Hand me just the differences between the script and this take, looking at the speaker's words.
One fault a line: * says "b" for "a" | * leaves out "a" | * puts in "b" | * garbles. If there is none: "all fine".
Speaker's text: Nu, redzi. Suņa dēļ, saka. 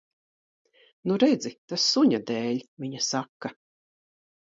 * puts in "Tas"
* puts in "viņa"